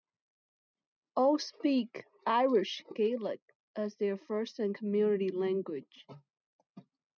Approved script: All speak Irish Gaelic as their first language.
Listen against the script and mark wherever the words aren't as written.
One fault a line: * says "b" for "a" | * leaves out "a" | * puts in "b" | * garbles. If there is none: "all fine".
* puts in "and community"